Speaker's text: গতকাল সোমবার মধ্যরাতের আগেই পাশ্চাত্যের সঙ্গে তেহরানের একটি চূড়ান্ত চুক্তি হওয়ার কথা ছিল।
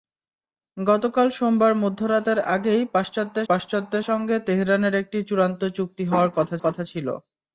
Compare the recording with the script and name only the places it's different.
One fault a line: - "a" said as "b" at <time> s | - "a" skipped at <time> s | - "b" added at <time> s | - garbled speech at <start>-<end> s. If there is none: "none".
- "পাশ্চাত্যের" added at 3.5 s
- "কথা" added at 6.6 s